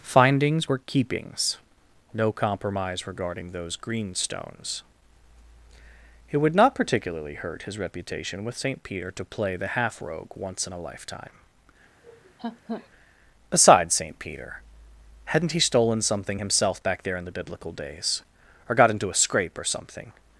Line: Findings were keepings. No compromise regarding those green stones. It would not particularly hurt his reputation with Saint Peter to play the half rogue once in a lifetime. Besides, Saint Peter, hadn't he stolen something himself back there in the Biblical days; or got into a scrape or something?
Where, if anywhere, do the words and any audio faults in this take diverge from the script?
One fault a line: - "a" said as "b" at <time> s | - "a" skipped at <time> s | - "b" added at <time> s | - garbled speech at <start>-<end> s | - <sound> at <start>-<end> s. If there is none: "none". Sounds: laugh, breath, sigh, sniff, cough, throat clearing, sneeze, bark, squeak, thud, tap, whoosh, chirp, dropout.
- laugh at 12.0-12.9 s